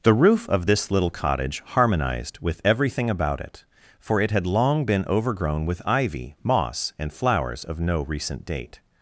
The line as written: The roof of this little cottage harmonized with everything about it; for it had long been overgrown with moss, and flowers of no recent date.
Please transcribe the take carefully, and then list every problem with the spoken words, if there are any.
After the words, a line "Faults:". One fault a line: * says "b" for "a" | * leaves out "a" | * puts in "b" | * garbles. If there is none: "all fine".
The roof of this little cottage harmonized with everything about it; for it had long been overgrown with ivy, moss, and flowers of no recent date.
Faults:
* puts in "ivy"